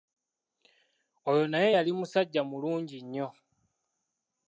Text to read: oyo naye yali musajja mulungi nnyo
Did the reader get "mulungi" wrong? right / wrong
right